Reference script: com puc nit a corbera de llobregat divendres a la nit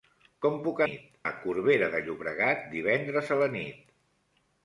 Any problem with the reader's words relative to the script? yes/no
no